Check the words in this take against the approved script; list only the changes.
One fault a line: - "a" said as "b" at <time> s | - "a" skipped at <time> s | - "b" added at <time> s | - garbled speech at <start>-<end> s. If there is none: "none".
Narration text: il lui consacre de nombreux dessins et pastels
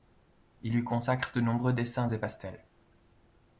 none